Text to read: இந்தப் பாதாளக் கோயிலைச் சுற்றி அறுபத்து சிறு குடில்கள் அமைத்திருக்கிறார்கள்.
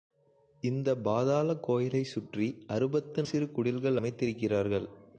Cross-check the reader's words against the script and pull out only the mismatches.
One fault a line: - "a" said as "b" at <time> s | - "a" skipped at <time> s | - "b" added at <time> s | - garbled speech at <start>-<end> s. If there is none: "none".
none